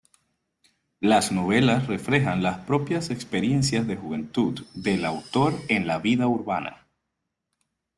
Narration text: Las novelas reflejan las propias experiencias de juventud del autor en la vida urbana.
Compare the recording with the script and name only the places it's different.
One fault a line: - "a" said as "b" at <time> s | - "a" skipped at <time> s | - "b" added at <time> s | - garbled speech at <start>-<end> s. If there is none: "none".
none